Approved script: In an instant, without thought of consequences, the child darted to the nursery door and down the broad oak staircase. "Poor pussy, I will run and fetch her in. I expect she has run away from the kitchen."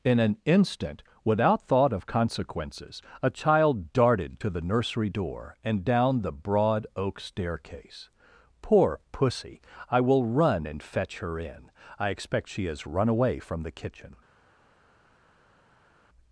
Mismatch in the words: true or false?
true